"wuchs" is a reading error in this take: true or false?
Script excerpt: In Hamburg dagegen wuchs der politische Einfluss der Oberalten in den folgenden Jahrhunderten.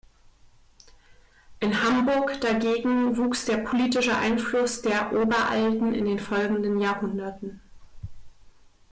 false